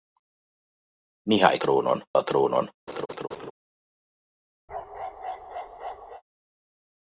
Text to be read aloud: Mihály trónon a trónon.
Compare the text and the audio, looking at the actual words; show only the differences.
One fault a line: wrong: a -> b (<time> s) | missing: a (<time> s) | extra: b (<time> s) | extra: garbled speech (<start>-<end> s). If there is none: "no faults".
no faults